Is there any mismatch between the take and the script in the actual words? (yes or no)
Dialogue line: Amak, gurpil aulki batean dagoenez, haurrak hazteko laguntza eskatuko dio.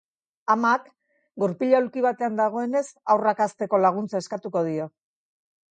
no